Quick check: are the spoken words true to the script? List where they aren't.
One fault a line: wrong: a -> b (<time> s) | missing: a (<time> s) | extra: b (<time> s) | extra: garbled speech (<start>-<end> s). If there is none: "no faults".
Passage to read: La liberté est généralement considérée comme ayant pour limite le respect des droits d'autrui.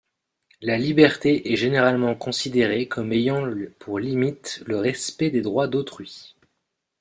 no faults